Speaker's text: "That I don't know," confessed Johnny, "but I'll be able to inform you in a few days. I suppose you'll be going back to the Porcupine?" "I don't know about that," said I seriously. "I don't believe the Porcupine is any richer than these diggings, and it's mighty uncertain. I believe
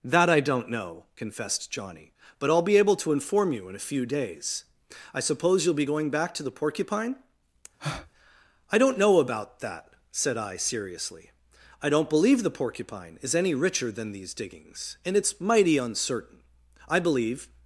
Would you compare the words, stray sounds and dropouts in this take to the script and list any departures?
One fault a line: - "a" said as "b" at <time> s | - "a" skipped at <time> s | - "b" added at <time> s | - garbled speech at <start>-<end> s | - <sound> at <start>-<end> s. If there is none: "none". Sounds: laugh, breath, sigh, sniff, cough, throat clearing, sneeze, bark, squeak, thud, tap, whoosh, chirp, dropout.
- breath at 7.8-8.1 s